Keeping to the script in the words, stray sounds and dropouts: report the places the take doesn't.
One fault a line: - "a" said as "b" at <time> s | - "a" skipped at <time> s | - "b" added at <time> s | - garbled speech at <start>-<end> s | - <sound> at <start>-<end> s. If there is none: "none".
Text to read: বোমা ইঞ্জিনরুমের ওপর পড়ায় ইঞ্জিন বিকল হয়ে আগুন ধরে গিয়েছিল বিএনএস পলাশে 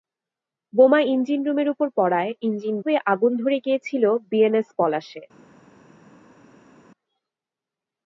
- "বিকল" skipped at 2.8 s